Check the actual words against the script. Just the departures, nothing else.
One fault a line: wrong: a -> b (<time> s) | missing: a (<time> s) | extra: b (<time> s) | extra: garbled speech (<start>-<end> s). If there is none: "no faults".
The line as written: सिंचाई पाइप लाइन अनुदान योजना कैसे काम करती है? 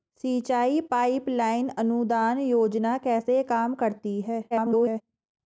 extra: garbled speech (4.5-5.0 s)